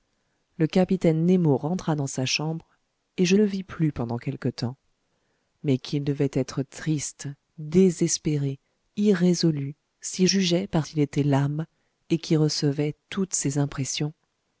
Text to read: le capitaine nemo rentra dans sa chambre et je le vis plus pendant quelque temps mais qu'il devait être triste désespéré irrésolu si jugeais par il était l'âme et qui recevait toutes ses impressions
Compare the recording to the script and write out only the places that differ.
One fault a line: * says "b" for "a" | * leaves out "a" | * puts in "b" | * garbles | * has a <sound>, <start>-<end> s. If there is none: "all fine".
all fine